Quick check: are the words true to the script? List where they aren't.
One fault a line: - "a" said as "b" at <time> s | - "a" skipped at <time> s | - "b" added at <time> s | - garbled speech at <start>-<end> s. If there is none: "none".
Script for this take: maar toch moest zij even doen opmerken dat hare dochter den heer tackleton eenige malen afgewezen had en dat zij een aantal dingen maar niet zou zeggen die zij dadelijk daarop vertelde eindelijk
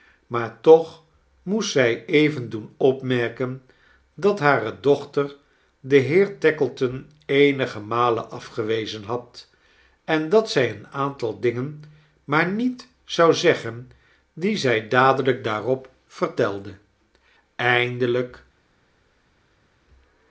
none